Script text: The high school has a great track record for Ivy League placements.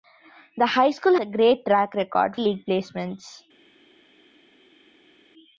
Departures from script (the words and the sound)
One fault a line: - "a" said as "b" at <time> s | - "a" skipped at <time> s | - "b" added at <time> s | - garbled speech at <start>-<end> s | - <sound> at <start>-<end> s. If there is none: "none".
- "has" skipped at 1.1 s
- "for Ivy" skipped at 2.4 s